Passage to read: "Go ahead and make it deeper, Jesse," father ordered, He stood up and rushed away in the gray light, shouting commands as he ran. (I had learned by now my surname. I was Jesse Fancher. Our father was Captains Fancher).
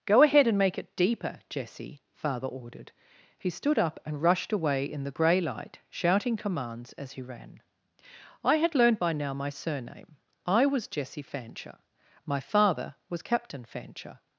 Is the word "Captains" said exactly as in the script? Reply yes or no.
no